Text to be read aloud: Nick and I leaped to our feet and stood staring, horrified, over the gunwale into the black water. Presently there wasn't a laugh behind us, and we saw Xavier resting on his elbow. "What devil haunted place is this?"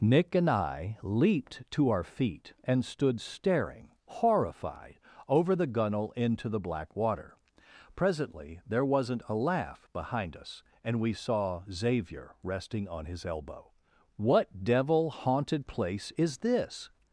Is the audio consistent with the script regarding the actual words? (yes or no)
yes